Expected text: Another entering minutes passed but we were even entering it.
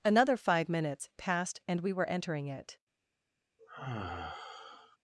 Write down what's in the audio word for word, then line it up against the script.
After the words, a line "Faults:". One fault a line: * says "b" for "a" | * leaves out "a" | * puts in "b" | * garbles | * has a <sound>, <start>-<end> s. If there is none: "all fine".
Another five minutes passed and we were entering it.
Faults:
* says "five" for "entering"
* says "and" for "but"
* leaves out "even"
* has a sigh, 3.6-5.0 s